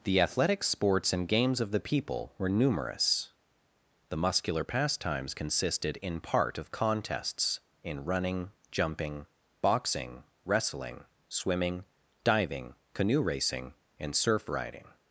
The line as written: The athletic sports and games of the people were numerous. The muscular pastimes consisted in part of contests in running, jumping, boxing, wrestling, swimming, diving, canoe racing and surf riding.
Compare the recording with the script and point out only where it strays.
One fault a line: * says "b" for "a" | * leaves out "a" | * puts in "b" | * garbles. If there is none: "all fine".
all fine